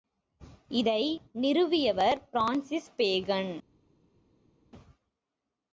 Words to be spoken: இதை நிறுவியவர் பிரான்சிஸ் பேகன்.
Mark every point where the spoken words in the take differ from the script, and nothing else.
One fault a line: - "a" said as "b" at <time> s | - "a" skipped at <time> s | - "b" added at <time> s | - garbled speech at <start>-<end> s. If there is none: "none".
none